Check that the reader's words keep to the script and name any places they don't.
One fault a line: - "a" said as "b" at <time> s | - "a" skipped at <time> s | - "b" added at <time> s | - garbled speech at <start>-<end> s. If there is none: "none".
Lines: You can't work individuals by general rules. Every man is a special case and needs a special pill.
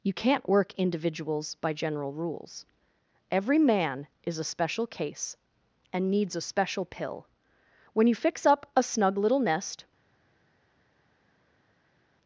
- "When you fix up a snug little nest" added at 7.9 s